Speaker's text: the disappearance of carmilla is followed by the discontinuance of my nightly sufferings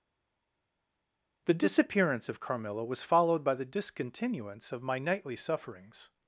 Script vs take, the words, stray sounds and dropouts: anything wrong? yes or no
yes